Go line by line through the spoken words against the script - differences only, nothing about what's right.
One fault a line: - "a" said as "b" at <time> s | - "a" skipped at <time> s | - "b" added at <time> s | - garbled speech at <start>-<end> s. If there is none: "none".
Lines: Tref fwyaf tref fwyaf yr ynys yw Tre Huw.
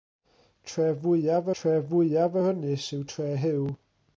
none